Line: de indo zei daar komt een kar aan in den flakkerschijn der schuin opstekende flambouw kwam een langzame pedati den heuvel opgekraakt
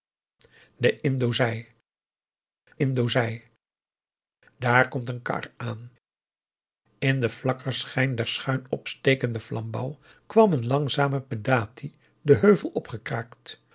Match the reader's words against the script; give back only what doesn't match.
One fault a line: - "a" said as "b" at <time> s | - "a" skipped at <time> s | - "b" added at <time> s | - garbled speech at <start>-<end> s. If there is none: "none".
- "indo zei" added at 2.8 s